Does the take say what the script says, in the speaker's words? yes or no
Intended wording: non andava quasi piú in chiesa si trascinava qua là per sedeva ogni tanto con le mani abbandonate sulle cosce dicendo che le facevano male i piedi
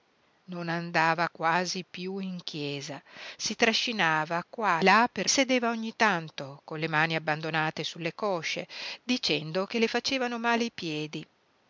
yes